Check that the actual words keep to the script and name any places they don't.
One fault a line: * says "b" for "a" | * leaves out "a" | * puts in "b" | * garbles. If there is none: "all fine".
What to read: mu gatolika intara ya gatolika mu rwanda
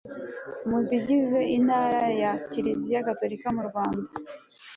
* says "zigize" for "gatolika"
* puts in "kiliziya"